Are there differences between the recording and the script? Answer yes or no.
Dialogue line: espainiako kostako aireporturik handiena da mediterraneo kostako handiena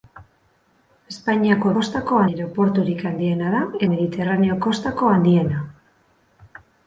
no